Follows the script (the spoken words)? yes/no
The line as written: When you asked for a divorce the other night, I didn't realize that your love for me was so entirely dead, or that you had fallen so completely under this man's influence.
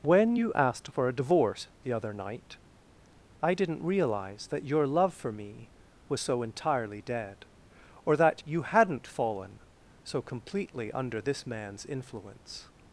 no